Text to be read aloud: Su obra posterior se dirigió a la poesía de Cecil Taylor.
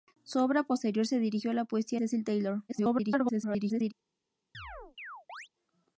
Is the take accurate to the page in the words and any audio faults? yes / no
no